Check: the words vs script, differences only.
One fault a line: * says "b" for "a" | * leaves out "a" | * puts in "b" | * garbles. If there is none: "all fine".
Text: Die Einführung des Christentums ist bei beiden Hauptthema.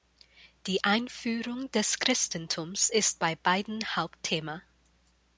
all fine